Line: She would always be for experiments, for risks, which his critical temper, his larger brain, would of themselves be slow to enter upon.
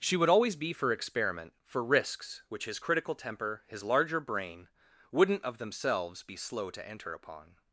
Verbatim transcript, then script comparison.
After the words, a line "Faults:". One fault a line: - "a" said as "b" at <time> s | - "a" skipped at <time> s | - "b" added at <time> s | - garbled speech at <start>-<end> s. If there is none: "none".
She would always be for experiment, for risks, which his critical temper, his larger brain, wouldn't of themselves be slow to enter upon.
Faults:
- "experiments" said as "experiment" at 0.9 s
- "would" said as "wouldn't" at 5.1 s